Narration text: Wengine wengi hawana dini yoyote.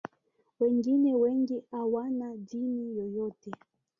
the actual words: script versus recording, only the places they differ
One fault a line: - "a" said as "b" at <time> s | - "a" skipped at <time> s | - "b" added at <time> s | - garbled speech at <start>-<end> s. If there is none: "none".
none